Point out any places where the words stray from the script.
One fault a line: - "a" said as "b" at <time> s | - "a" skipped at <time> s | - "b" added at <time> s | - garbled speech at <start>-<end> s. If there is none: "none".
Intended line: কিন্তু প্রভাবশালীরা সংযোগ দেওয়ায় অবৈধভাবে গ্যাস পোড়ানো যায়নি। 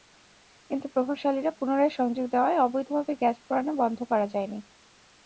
- "পুনরায়" added at 1.5 s
- "বন্ধ করা" added at 3.8 s